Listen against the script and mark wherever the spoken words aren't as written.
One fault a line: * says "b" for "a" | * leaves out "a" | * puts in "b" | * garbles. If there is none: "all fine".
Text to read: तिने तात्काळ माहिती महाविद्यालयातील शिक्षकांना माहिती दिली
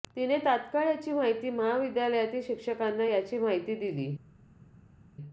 * puts in "याची"
* puts in "याची"